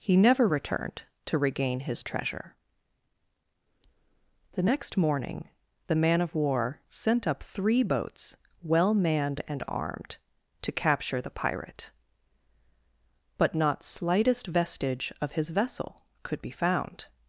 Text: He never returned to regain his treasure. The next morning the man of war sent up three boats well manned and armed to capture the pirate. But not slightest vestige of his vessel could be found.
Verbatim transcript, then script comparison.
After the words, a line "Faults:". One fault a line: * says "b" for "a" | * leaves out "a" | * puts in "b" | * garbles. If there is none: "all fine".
He never returned to regain his treasure. The next morning the man of war sent up three boats well manned and armed to capture the pirate. But not slightest vestige of his vessel could be found.
Faults:
all fine